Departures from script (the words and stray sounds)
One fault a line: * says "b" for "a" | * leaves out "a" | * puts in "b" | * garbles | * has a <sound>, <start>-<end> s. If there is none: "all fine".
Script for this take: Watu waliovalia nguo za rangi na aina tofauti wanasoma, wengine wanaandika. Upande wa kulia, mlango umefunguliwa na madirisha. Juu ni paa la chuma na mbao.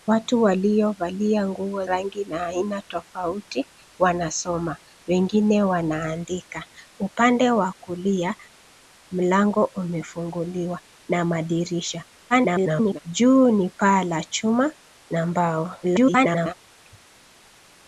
* leaves out "za"
* garbles
* garbles